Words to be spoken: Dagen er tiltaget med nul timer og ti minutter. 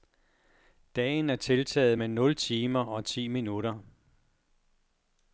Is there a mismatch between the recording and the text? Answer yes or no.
no